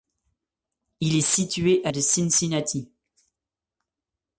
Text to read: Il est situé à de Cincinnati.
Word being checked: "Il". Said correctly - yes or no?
yes